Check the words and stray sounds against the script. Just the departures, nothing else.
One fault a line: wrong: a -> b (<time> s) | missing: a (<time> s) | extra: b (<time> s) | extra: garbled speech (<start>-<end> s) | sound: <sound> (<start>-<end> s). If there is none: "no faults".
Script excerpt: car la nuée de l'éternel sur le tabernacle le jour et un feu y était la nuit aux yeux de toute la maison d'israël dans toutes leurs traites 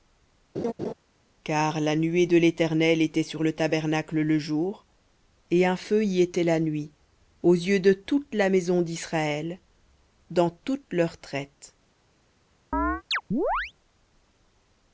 sound: laugh (0.5-0.9 s)
extra: était (3.0 s)
sound: chirp (12.7-13.7 s)